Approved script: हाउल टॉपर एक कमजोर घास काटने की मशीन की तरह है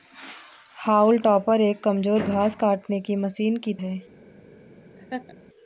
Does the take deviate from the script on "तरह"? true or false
true